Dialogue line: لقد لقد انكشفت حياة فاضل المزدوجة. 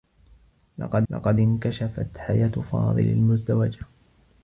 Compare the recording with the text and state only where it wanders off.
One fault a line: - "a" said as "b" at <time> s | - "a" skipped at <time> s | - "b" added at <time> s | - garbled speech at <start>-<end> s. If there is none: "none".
none